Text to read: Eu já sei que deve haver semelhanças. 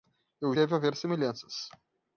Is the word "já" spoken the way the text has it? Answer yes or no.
no